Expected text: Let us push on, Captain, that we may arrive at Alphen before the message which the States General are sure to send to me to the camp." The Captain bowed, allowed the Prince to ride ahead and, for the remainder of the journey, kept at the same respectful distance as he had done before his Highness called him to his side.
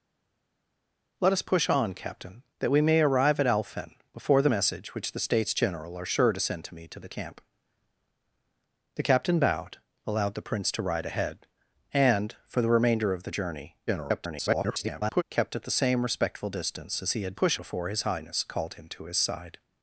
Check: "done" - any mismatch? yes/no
yes